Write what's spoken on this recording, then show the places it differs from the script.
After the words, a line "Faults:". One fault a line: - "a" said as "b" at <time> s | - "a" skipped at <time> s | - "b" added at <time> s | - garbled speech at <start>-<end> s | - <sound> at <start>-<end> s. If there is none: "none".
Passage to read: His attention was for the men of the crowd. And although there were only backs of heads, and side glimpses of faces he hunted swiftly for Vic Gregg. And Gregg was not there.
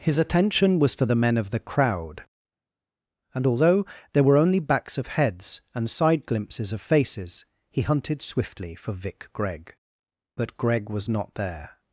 His attention was for the men of the crowd. And although there were only backs of heads, and side glimpses of faces he hunted swiftly for Vic Gregg. But Gregg was not there.
Faults:
- "And" said as "But" at 10.4 s